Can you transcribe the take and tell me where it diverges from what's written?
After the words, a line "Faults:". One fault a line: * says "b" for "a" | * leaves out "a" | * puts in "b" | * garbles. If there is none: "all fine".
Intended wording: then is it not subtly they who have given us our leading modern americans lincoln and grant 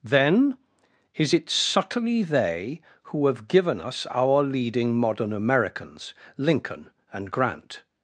then is it subtly they who have given us our leading modern americans lincoln and grant
Faults:
* leaves out "not"